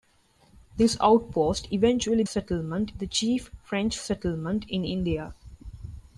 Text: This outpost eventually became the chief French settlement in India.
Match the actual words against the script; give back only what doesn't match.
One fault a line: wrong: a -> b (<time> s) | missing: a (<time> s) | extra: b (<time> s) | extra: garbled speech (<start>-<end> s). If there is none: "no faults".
wrong: became -> settlement (2.2 s)